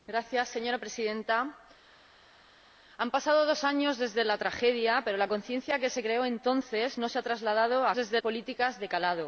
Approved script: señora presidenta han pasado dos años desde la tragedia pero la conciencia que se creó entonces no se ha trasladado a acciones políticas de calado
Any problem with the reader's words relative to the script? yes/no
yes